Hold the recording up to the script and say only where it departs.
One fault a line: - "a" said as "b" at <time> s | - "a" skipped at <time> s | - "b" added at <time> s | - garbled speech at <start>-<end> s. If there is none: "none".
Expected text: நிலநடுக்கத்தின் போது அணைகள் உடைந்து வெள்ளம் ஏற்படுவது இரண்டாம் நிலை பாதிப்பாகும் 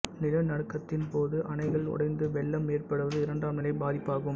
none